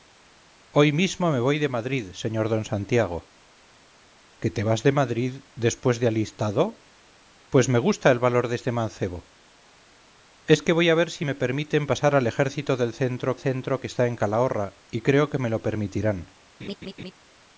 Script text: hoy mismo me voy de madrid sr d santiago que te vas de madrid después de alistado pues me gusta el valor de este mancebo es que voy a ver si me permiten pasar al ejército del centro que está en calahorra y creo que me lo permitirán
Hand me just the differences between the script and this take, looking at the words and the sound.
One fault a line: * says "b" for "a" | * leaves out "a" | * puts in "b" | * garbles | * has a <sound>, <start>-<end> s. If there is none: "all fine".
* puts in "centro"
* has a laugh, 16.6-17.1 s